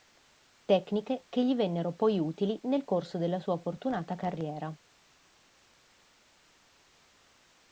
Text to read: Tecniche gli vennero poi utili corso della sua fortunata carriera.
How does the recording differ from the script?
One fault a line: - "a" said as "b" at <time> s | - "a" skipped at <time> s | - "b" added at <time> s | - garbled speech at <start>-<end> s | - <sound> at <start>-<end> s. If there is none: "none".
- "che" added at 1.3 s
- "nel" added at 2.6 s